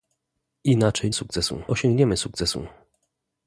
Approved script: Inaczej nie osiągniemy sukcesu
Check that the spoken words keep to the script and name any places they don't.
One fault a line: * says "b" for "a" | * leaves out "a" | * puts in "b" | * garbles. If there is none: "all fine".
* says "sukcesu" for "nie"